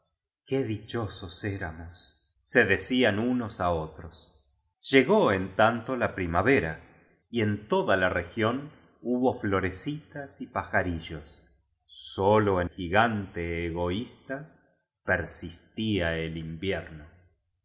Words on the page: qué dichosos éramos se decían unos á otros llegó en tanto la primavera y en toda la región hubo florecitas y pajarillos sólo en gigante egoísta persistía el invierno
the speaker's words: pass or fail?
pass